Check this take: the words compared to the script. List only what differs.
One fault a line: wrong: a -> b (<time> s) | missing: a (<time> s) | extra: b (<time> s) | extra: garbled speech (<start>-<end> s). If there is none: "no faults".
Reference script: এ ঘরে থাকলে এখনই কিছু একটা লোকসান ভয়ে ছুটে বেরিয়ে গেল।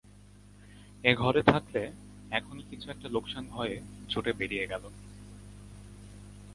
no faults